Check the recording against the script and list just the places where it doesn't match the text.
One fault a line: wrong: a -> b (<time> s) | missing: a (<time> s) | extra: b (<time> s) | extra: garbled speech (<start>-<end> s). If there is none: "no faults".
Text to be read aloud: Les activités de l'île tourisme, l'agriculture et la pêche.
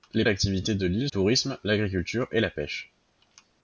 no faults